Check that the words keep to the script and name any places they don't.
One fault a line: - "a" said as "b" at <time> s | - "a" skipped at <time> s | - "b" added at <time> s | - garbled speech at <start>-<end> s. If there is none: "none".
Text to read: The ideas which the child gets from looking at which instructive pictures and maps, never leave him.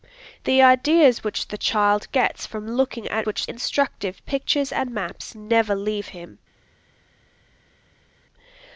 none